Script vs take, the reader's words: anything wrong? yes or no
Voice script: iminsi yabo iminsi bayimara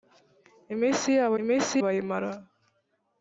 no